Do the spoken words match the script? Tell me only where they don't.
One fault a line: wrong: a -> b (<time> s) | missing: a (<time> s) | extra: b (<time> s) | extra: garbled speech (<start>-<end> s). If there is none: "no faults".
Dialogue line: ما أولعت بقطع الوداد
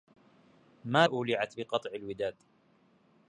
no faults